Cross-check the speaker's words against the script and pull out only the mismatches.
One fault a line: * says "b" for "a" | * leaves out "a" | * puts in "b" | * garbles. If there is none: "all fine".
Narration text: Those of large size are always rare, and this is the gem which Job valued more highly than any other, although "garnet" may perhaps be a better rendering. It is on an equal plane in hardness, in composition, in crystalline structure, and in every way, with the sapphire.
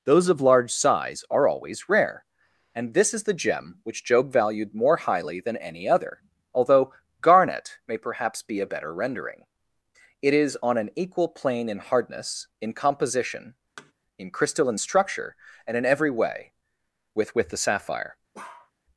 * puts in "with"